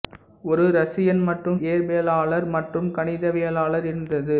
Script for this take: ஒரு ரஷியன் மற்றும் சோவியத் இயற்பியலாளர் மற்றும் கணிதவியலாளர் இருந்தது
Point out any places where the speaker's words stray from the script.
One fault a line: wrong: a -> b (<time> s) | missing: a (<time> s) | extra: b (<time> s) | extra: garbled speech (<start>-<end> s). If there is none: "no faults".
missing: சோவியத் (1.6 s)